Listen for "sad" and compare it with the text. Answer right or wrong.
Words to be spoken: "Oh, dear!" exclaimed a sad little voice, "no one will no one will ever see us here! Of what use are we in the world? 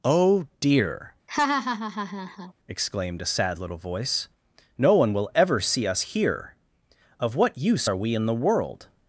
right